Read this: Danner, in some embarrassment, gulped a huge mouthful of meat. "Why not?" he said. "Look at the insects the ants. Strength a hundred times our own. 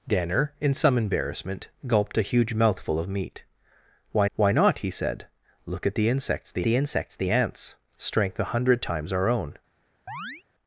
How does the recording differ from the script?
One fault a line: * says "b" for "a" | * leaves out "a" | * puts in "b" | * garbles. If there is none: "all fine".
* puts in "why"
* puts in "the insects the"